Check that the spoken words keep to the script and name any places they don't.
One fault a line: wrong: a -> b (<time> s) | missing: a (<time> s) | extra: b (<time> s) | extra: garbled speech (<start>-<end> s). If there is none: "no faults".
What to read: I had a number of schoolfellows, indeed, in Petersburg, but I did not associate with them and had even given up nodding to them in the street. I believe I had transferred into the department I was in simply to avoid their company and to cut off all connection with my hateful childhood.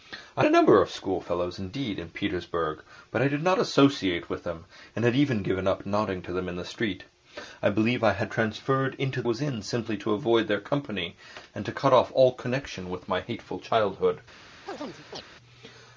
missing: had (0.5 s)
missing: the department I (9.2 s)